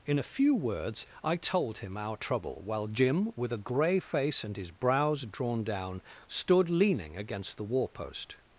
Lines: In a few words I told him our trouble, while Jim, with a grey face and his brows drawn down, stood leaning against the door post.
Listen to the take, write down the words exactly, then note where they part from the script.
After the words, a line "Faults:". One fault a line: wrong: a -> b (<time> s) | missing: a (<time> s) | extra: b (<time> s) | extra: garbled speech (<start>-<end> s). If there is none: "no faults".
In a few words I told him our trouble, while Jim, with a grey face and his brows drawn down, stood leaning against the war post.
Faults:
wrong: door -> war (7.7 s)